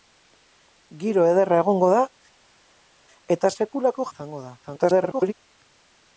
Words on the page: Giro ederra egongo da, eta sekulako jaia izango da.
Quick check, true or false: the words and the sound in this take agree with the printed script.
false